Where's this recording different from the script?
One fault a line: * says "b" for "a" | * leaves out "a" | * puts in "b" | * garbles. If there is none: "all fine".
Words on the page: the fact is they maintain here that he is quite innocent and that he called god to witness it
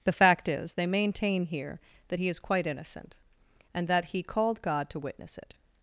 all fine